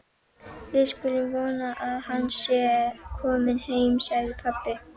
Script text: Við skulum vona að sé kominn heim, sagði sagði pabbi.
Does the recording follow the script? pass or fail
fail